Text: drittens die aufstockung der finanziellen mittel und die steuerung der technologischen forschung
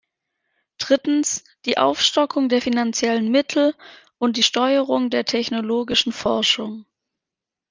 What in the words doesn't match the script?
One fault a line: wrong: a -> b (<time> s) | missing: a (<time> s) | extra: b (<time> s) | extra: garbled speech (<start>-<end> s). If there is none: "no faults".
no faults